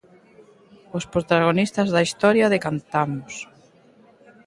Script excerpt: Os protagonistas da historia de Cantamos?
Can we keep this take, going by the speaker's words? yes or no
yes